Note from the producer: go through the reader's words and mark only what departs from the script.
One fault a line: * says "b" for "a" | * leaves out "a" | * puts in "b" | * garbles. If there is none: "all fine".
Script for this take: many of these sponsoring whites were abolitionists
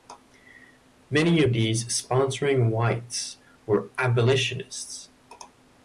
all fine